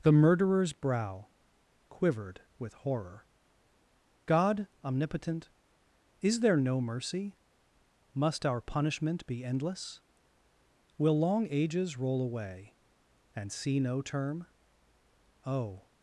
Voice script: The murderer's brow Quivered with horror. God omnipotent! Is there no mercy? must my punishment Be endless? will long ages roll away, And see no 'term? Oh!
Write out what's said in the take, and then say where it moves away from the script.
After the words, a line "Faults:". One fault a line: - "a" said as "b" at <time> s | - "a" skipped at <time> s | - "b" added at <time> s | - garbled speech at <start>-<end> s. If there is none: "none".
The murderer's brow Quivered with horror. God omnipotent! Is there no mercy? must our punishment Be endless? will long ages roll away, And see no 'term? Oh!
Faults:
- "my" said as "our" at 8.5 s